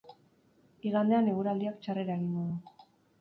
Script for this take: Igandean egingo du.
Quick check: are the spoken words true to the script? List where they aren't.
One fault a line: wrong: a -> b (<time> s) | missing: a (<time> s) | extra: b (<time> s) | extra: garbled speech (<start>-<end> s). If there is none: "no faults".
extra: eguraldiak txarrera (1.3 s)